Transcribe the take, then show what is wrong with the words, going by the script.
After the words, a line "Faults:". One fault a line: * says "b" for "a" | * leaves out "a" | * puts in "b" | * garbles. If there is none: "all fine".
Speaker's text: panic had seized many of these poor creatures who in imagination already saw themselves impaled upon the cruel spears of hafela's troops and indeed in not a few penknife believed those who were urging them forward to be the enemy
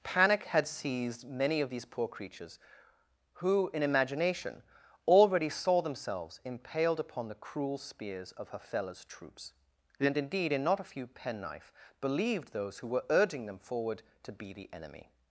panic had seized many of these poor creatures who in imagination already saw themselves impaled upon the cruel spears of hafela's troops and indeed in not a few penknife believed those who were urging them forward to be the enemy
Faults:
all fine